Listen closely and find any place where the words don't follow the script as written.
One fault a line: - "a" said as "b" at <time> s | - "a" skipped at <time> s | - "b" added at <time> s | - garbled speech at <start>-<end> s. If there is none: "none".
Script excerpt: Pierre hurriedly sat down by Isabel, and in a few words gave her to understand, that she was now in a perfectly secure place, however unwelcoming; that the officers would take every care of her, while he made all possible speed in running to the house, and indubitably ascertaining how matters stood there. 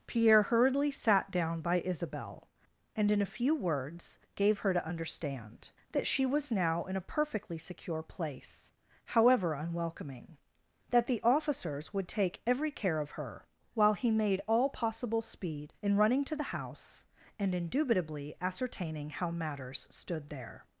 none